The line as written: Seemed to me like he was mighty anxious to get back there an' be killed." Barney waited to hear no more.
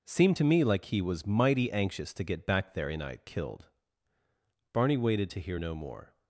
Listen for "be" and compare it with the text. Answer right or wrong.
wrong